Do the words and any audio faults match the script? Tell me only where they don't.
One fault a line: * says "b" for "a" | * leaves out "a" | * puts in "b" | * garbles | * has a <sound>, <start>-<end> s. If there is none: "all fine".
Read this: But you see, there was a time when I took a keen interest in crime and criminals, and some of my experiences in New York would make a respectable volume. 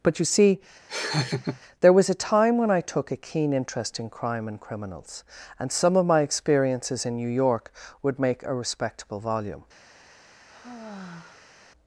* has a laugh, 0.9-1.6 s
* has a sigh, 10.5-11.5 s